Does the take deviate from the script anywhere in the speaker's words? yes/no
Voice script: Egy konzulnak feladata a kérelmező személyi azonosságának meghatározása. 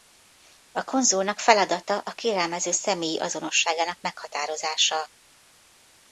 yes